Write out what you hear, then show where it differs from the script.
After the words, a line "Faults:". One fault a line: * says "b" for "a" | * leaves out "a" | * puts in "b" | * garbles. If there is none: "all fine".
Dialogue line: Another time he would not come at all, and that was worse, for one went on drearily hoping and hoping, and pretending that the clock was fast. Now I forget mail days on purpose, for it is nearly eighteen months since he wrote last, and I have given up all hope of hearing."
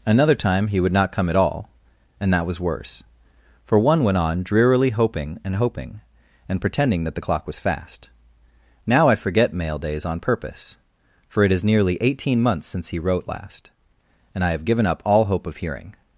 Another time he would not come at all, and that was worse, for one went on drearily hoping and hoping, and pretending that the clock was fast. Now I forget mail days on purpose, for it is nearly eighteen months since he wrote last, and I have given up all hope of hearing."
Faults:
all fine